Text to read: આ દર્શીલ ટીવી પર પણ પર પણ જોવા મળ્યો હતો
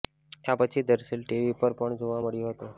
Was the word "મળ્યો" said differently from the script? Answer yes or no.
no